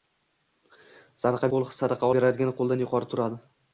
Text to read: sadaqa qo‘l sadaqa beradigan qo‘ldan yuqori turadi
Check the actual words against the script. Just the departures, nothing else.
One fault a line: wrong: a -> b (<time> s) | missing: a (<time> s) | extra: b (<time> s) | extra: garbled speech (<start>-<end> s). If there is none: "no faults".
no faults